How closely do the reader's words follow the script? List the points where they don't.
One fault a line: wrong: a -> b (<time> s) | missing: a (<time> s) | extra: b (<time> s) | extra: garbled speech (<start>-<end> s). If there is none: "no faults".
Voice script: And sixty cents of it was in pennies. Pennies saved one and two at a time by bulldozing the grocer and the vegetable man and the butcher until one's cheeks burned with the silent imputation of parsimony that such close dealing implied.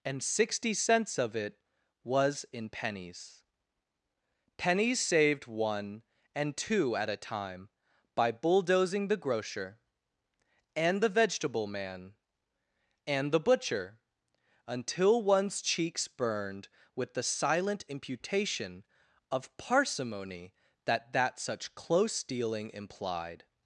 extra: that (21.1 s)